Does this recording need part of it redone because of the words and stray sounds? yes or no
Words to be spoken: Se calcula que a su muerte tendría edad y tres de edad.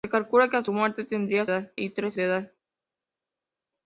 no